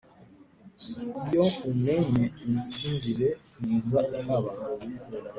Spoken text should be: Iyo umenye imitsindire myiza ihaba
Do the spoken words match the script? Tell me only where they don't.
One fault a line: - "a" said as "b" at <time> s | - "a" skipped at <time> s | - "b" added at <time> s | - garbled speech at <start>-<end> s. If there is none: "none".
none